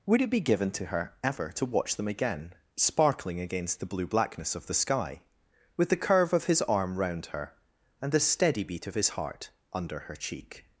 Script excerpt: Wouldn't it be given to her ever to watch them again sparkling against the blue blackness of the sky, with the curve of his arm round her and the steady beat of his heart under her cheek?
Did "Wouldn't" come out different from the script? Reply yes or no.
yes